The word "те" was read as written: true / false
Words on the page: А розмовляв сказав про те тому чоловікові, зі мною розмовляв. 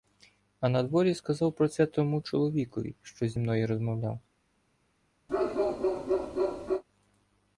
false